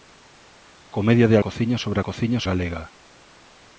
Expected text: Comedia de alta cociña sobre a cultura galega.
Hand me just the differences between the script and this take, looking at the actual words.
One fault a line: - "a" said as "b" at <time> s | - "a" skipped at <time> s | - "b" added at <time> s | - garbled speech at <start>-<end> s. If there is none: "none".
- "alta" skipped at 1.4 s
- "cultura" said as "cociña" at 2.1 s